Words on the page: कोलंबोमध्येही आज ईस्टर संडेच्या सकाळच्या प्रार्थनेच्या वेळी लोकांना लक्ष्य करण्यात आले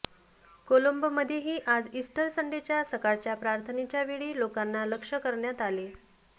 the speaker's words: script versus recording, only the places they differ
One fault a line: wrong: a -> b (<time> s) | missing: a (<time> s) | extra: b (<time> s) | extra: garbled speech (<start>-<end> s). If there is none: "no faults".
no faults